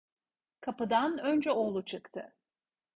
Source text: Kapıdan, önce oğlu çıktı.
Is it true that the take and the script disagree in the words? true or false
false